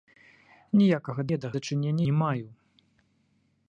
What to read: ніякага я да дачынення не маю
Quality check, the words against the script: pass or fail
pass